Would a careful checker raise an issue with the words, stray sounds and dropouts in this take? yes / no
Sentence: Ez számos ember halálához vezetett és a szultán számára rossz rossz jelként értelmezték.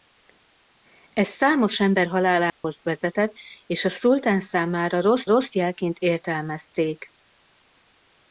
yes